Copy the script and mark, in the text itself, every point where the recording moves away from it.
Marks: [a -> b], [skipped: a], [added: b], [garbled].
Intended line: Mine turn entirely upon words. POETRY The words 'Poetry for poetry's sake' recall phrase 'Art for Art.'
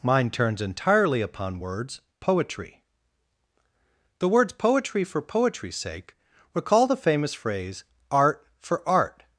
Mine [turn -> turns] entirely upon words. POETRY The words 'Poetry for poetry's sake' recall [added: the famous] phrase 'Art for Art.'